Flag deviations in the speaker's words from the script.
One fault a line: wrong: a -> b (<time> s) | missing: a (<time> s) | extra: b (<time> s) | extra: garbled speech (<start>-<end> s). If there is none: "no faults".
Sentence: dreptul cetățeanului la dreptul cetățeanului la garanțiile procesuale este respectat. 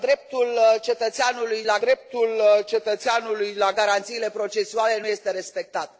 no faults